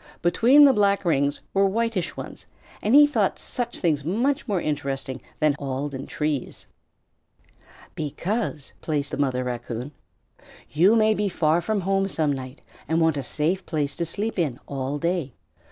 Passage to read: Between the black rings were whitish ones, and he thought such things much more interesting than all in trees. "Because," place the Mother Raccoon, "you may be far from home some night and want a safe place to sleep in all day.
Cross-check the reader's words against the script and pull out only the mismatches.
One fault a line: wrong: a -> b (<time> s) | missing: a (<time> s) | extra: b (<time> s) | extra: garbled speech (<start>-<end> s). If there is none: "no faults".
no faults